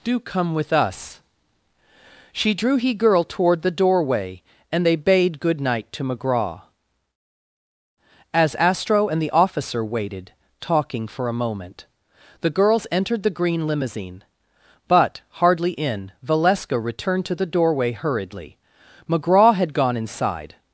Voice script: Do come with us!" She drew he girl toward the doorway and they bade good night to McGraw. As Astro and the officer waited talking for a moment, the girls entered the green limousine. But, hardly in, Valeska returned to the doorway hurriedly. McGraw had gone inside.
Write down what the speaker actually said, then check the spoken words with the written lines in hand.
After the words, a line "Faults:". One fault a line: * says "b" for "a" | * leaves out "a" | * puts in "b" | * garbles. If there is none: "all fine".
Do come with us!" She drew he girl toward the doorway and they bade good night to McGraw. As Astro and the officer waited talking for a moment, the girls entered the green limousine. But, hardly in, Valeska returned to the doorway hurriedly. McGraw had gone inside.
Faults:
all fine